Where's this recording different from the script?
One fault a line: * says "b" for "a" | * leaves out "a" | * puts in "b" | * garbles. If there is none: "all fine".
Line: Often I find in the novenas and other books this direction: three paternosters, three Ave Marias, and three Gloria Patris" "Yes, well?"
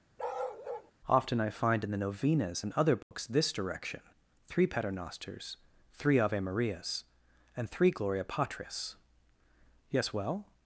all fine